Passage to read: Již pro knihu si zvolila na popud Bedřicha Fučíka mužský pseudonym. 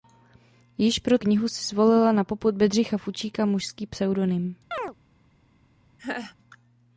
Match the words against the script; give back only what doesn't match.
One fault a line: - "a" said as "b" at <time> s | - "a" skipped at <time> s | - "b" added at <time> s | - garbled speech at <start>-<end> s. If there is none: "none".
none